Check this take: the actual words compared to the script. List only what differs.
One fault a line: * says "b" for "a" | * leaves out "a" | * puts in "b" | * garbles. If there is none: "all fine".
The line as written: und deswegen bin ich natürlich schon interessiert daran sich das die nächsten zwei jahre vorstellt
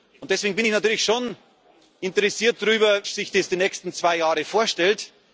all fine